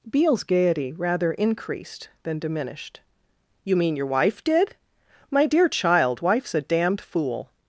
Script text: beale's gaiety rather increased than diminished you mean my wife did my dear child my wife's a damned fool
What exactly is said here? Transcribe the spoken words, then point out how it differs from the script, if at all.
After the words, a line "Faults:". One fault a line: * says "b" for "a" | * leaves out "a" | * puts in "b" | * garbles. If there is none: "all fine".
beale's gaiety rather increased than diminished you mean your wife did my dear child wife's a damned fool
Faults:
* says "your" for "my"
* leaves out "my"